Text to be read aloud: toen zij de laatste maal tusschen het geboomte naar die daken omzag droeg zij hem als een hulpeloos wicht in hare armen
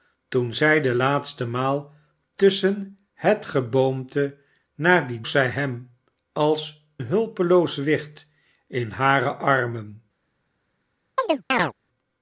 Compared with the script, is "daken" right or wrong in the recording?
wrong